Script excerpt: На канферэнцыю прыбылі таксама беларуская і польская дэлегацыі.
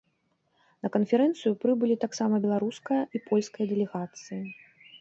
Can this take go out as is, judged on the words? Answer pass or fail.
pass